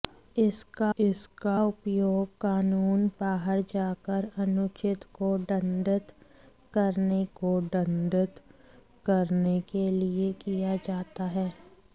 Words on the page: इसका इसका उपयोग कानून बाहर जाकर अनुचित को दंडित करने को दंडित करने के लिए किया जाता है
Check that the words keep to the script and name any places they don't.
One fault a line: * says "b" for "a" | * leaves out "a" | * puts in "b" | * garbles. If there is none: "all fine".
all fine